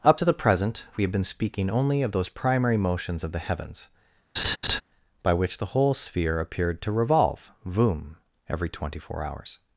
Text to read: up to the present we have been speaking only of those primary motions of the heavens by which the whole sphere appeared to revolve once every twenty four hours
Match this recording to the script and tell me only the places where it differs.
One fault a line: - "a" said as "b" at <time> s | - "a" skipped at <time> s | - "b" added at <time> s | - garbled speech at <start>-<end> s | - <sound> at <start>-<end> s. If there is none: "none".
- laugh at 4.4-4.8 s
- "once" said as "voom" at 7.7 s